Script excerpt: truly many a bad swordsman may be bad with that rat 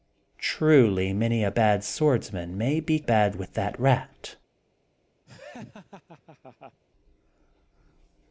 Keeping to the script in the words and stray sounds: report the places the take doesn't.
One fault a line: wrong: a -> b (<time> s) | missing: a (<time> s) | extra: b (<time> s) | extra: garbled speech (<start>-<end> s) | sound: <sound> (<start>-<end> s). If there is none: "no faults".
sound: laugh (5.3-6.8 s)